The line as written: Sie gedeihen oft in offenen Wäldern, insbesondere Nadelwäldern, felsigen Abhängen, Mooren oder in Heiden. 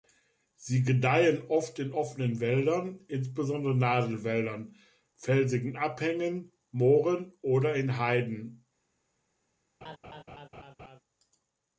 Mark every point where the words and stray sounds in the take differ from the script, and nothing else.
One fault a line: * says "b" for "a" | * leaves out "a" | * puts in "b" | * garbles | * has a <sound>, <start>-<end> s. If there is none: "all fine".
* has a laugh, 9.8-11.0 s